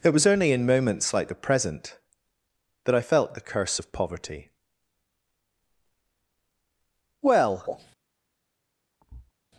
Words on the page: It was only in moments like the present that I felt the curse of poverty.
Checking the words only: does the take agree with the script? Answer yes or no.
no